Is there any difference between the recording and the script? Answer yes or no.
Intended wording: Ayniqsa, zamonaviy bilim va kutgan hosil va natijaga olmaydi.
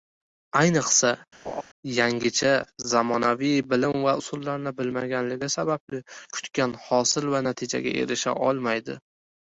yes